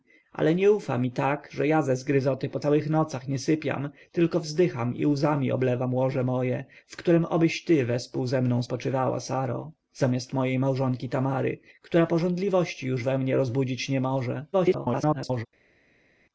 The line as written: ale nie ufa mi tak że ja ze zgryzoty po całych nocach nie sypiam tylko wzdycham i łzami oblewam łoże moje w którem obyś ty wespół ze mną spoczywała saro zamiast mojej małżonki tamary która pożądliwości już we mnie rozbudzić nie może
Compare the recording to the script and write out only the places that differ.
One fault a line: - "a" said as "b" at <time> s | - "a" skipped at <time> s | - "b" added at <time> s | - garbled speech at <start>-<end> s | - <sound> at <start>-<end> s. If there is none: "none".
- garbled speech at 14.5-15.5 s